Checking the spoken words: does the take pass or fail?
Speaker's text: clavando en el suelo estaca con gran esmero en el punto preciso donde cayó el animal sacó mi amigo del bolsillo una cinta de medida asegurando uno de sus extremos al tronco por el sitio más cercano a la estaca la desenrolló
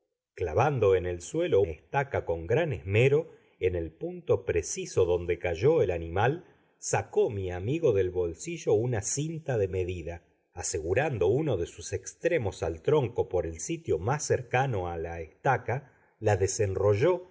pass